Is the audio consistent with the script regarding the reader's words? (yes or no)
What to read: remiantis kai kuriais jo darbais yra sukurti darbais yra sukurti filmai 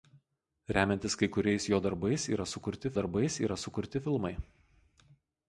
yes